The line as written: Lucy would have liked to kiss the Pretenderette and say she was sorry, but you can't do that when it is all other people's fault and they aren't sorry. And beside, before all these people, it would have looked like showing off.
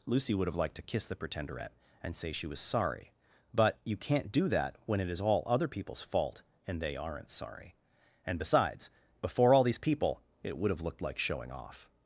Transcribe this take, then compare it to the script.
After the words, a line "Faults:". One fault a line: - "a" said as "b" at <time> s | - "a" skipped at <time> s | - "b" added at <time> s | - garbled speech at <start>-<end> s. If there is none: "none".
Lucy would have liked to kiss the Pretenderette and say she was sorry, but you can't do that when it is all other people's fault and they aren't sorry. And besides, before all these people, it would have looked like showing off.
Faults:
- "beside" said as "besides" at 8.4 s